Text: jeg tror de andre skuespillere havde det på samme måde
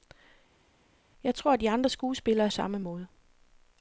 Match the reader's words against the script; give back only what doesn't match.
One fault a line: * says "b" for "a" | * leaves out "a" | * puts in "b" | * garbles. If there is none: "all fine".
* leaves out "havde det på"